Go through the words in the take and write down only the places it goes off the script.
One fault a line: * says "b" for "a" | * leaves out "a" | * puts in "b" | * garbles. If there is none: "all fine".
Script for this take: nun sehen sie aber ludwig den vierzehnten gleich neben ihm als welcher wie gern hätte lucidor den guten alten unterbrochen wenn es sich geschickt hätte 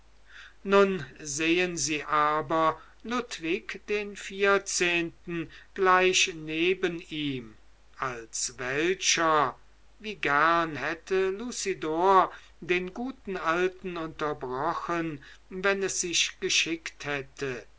all fine